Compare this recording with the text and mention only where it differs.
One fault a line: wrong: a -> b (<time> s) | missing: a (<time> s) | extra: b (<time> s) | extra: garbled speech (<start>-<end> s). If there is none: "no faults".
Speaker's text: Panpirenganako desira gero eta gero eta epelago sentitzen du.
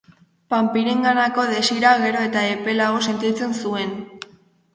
missing: gero eta (2.4 s)
wrong: du -> zuen (3.6 s)